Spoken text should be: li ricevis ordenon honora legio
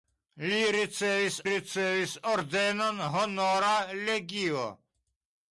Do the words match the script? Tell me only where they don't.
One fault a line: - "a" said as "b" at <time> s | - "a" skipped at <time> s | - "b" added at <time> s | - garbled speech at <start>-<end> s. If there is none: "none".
- "ricevis" added at 1.5 s